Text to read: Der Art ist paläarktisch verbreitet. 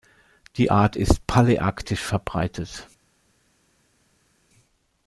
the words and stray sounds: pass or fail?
fail